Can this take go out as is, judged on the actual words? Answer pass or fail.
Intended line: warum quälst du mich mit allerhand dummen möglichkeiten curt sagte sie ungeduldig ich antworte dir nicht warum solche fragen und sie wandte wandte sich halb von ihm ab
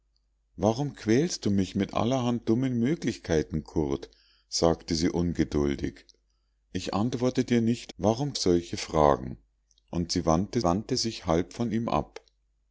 pass